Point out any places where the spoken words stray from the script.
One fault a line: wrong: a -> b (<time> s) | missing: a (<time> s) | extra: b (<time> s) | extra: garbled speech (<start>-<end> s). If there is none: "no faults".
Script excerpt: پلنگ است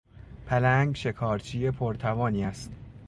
extra: شکارچی پرتوانی (0.9 s)